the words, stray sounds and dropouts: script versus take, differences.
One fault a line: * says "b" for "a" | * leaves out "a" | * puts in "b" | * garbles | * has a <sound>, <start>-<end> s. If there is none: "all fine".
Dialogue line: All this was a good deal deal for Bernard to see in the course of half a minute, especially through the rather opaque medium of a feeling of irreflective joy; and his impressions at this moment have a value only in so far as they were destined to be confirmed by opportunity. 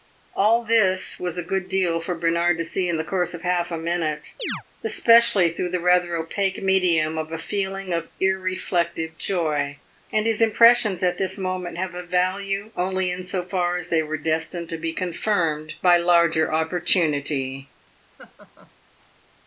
* leaves out "deal"
* has a chirp, 4.4-4.6 s
* puts in "larger"
* has a laugh, 18.2-18.7 s